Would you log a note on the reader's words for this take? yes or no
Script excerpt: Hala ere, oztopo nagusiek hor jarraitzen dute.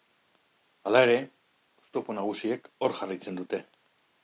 no